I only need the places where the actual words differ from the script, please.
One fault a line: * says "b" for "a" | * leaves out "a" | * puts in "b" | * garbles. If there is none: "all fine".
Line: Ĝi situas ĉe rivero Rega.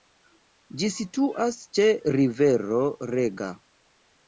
all fine